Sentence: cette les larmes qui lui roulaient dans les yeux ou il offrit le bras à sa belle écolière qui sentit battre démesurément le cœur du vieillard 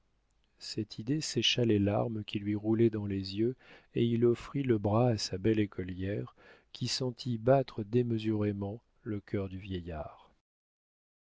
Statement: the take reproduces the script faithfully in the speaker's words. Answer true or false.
false